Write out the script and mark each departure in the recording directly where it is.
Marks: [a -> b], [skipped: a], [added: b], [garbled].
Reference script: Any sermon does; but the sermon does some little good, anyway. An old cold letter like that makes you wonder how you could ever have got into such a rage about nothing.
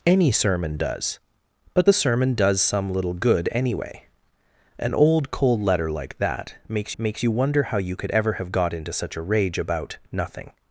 Any sermon does; but the sermon does some little good, anyway. An old cold letter like that makes [added: makes] you wonder how you could ever have got into such a rage about nothing.